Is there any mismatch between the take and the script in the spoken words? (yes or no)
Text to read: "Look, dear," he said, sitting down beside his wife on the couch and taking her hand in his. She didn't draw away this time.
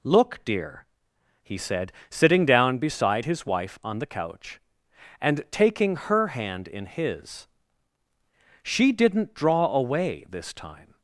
no